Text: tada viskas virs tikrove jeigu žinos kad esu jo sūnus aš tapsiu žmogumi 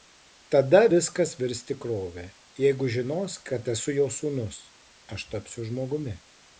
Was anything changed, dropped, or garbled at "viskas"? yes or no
no